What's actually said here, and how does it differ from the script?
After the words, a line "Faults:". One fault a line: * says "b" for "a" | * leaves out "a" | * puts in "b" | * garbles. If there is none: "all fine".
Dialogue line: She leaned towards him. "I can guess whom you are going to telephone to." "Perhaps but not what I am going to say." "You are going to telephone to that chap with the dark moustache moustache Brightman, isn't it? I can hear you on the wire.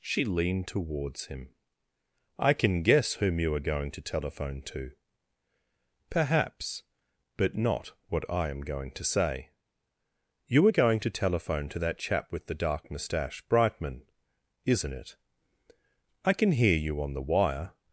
She leaned towards him. "I can guess whom you are going to telephone to." "Perhaps but not what I am going to say." "You are going to telephone to that chap with the dark moustache Brightman, isn't it? I can hear you on the wire.
Faults:
* leaves out "moustache"